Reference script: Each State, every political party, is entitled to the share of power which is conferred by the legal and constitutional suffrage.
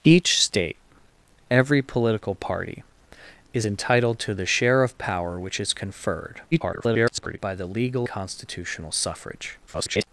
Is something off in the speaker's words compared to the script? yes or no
yes